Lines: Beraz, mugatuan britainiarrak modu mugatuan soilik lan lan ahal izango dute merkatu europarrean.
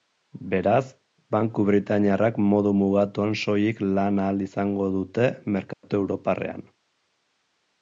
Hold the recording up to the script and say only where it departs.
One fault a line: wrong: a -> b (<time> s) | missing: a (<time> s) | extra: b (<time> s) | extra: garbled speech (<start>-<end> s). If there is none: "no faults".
wrong: mugatuan -> banku (1.4 s)
missing: lan (4.2 s)